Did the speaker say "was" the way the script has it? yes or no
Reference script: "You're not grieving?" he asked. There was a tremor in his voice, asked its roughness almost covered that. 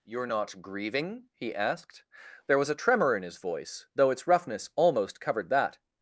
yes